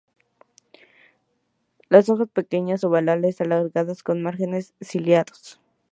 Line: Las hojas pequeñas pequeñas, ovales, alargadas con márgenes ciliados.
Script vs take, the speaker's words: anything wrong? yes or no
yes